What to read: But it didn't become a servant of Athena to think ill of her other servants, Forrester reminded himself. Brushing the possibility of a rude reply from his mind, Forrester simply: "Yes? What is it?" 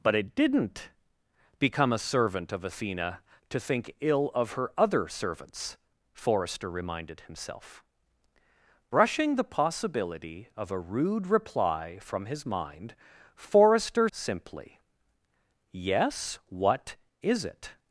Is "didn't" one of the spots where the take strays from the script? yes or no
no